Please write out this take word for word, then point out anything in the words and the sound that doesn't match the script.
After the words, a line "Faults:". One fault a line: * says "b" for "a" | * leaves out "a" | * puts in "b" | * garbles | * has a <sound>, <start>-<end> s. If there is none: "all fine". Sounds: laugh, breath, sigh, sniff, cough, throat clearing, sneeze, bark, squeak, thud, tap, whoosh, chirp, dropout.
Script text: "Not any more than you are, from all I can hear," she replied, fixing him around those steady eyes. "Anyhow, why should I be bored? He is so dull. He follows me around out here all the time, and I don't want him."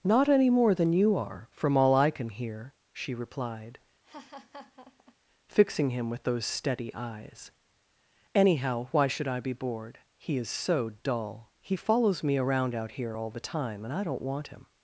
"Not any more than you are, from all I can hear," she replied, fixing him with those steady eyes. "Anyhow, why should I be bored? He is so dull. He follows me around out here all the time, and I don't want him."
Faults:
* has a laugh, 4.0-5.2 s
* says "with" for "around"